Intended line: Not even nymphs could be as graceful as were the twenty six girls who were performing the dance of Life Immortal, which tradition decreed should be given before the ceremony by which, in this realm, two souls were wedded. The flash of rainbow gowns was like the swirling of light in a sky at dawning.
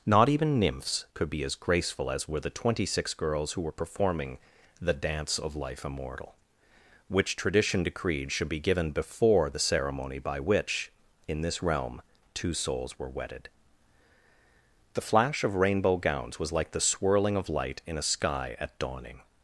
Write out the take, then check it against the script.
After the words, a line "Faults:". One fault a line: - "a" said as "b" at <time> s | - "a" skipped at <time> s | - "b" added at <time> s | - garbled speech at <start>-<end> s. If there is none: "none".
Not even nymphs could be as graceful as were the twenty six girls who were performing the dance of Life Immortal, which tradition decreed should be given before the ceremony by which, in this realm, two souls were wedded. The flash of rainbow gowns was like the swirling of light in a sky at dawning.
Faults:
none